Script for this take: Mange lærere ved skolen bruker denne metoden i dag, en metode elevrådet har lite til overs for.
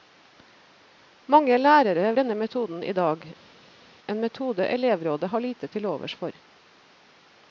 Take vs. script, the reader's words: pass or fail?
fail